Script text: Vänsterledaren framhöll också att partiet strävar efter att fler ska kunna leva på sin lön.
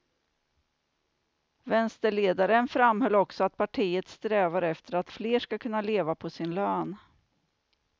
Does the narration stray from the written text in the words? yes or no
no